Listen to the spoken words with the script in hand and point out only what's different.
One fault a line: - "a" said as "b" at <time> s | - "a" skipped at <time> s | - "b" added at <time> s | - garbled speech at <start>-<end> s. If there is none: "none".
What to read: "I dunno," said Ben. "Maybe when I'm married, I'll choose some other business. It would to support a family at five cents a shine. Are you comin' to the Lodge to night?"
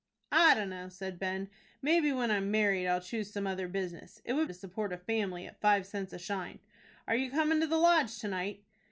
none